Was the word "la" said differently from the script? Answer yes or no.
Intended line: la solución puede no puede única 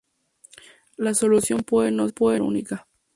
no